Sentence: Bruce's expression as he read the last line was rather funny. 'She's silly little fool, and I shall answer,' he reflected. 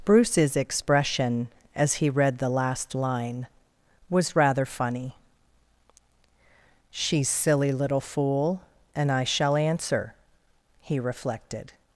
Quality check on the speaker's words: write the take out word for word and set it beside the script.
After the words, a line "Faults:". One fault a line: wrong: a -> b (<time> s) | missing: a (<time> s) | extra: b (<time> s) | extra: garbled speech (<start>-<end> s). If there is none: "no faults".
Bruce's expression as he read the last line was rather funny. 'She's silly little fool, and I shall answer,' he reflected.
Faults:
no faults